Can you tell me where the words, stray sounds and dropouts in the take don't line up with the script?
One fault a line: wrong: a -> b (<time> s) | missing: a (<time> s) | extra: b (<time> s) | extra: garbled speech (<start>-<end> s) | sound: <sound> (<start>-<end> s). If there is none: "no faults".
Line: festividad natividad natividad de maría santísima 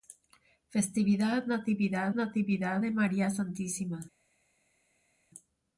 no faults